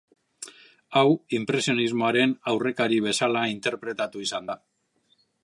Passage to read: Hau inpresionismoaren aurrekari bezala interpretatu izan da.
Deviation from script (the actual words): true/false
false